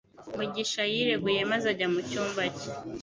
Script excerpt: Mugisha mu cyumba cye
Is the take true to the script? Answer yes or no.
no